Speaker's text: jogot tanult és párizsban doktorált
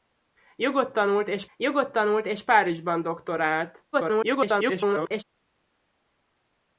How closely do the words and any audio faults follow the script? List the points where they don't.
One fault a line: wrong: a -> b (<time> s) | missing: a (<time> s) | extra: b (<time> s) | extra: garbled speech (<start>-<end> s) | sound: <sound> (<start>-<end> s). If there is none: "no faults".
extra: jogot tanult és (1.6 s)
extra: garbled speech (3.9-5.2 s)